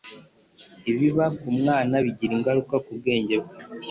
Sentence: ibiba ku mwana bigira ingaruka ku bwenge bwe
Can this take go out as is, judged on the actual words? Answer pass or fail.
pass